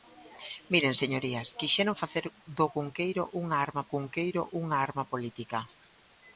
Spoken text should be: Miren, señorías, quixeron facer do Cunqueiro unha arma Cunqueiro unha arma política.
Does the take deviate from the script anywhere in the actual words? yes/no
no